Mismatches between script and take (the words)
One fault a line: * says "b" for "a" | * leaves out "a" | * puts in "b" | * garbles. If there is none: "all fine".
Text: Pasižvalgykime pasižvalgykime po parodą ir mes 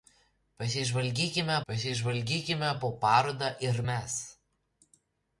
all fine